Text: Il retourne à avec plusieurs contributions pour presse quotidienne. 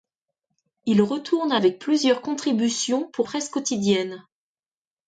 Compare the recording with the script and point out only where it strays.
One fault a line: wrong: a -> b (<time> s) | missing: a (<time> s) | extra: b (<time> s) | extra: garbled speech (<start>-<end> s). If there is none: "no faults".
no faults